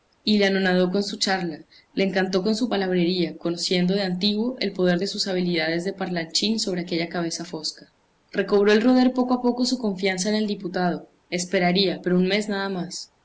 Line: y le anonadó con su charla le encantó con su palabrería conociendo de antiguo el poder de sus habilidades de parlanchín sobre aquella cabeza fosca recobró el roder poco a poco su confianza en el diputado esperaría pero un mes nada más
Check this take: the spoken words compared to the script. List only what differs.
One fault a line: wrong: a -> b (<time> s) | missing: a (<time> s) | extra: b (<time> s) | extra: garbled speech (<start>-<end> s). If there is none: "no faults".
no faults